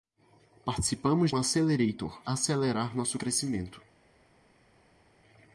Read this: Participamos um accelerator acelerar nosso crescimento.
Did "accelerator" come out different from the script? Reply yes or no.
no